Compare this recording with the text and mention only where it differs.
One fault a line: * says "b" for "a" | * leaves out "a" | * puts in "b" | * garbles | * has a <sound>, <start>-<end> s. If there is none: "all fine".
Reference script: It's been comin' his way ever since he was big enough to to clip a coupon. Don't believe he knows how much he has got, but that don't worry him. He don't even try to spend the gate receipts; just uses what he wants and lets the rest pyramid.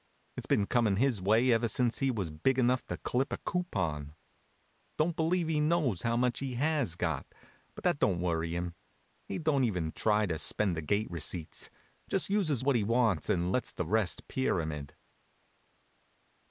* leaves out "to"